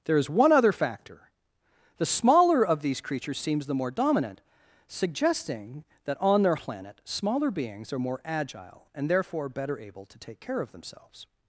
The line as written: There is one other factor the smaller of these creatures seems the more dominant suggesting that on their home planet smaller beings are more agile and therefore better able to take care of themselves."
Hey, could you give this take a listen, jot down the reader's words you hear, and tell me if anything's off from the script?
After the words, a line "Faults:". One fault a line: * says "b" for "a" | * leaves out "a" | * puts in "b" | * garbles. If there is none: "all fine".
There is one other factor the smaller of these creatures seems the more dominant suggesting that on their planet smaller beings are more agile and therefore better able to take care of themselves."
Faults:
* leaves out "home"